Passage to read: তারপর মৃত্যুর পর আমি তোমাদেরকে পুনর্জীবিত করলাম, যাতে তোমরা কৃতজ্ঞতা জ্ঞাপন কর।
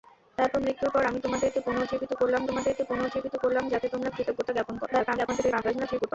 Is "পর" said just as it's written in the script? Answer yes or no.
yes